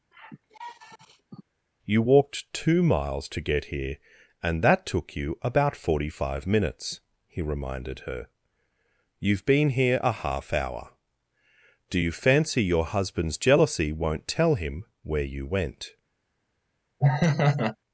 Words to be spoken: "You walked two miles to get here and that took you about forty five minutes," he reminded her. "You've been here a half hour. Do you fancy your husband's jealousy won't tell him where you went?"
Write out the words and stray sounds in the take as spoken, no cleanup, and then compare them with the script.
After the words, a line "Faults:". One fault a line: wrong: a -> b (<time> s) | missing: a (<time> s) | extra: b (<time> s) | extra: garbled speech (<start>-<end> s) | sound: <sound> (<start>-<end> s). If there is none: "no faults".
"You walked two miles to get here and that took you about forty five minutes," he reminded her. "You've been here a half hour. Do you fancy your husband's jealousy won't tell him where you went?"
Faults:
sound: sigh (0.1-1.4 s)
sound: laugh (17.0-17.8 s)